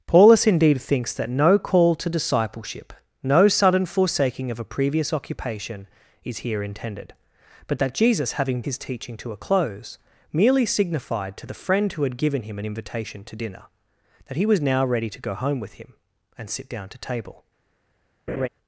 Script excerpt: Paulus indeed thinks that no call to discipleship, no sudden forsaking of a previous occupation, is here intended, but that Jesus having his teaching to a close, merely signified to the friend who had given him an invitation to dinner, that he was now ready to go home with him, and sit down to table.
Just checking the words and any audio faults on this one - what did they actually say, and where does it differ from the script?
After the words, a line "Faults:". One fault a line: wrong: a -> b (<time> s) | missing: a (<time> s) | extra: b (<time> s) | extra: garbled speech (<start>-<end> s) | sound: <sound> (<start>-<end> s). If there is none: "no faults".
Paulus indeed thinks that no call to discipleship, no sudden forsaking of a previous occupation, is here intended, but that Jesus having his teaching to a close, merely signified to the friend who had given him an invitation to dinner, that he was now ready to go home with him, and sit down to table.
Faults:
sound: laugh (18.3-18.5 s)